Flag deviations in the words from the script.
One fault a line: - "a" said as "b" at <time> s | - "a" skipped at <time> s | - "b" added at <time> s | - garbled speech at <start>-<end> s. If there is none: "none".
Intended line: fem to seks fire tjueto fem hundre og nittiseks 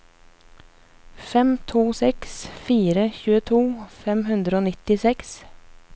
none